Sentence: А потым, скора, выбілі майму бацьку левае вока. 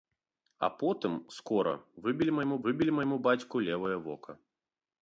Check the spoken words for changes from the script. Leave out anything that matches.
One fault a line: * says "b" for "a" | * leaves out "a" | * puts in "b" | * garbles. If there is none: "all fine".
* puts in "выбілі майму"